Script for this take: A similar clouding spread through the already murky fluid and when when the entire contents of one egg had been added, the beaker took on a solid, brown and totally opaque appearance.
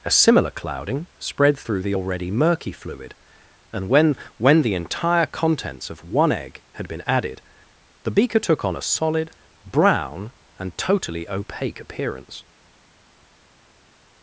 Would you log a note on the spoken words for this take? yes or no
no